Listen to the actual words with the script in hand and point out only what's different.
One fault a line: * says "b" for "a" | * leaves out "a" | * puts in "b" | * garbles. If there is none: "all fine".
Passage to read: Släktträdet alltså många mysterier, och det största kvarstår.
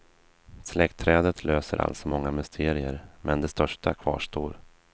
* puts in "löser"
* says "men" for "och"